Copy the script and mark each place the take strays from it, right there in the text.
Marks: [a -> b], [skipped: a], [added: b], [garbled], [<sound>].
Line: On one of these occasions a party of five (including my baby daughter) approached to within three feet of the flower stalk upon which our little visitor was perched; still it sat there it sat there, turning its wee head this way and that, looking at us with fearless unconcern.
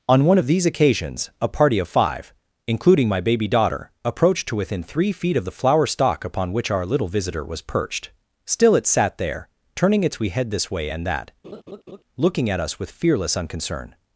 On one of these occasions a party of five (including my baby daughter) approached to within three feet of the flower stalk upon which our little visitor was perched; still it sat there [skipped: it sat there,] turning its wee head this way and that, [laugh] looking at us with fearless unconcern.